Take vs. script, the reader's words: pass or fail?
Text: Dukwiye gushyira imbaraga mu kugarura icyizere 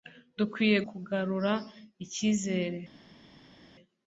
fail